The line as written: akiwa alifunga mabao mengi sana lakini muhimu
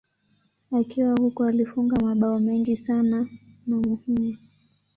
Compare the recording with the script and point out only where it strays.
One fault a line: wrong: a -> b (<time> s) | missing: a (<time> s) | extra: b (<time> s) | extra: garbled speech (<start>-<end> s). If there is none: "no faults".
extra: huko (1.1 s)
wrong: lakini -> na (3.7 s)